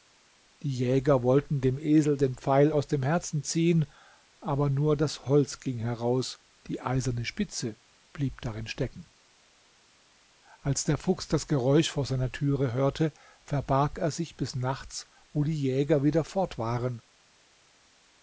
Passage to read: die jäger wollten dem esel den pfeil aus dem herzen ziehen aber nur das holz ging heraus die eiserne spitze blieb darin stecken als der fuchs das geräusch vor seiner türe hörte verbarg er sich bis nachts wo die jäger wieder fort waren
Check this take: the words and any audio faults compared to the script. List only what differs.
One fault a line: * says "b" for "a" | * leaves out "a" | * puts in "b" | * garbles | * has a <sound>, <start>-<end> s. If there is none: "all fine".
all fine